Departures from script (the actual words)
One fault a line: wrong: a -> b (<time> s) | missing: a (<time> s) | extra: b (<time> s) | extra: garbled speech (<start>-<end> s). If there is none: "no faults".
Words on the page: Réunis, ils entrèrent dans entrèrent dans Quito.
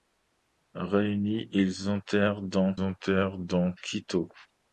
no faults